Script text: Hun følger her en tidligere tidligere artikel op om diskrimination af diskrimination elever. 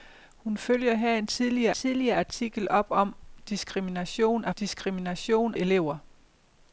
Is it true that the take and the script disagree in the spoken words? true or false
false